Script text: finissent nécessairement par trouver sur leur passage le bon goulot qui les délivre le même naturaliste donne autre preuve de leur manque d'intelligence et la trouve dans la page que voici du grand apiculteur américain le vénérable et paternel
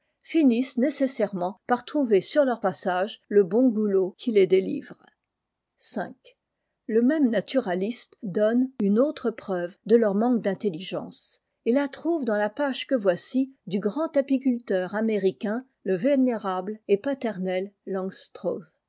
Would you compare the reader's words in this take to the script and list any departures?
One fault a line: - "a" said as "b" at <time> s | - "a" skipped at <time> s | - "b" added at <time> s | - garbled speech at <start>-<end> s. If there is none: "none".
- "une" added at 8.8 s